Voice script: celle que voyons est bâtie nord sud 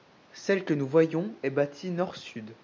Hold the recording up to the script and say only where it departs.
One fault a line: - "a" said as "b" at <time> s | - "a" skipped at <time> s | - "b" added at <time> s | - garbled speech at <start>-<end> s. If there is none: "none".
- "nous" added at 0.7 s